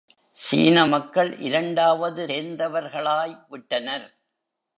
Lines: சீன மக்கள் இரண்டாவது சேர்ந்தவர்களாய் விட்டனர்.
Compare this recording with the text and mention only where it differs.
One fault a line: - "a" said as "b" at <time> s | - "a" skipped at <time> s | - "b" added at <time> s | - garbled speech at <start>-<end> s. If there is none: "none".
none